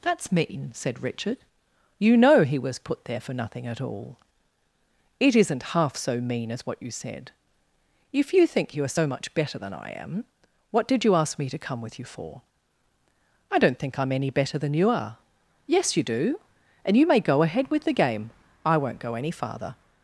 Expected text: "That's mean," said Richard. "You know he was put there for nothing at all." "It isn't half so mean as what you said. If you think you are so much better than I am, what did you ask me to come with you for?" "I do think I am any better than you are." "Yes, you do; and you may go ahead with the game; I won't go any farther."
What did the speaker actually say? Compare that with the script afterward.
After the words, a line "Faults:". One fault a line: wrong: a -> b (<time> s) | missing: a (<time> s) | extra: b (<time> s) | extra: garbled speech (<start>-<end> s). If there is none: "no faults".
"That's mean," said Richard. "You know he was put there for nothing at all." "It isn't half so mean as what you said. If you think you are so much better than I am, what did you ask me to come with you for?" "I don't think I am any better than you are." "Yes, you do; and you may go ahead with the game; I won't go any farther."
Faults:
wrong: do -> don't (13.6 s)